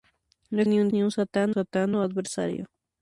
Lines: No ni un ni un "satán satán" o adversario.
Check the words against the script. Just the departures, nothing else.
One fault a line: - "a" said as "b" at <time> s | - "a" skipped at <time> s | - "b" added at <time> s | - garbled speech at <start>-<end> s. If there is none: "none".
none